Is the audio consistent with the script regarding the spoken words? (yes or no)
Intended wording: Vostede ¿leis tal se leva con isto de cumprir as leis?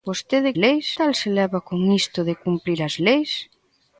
yes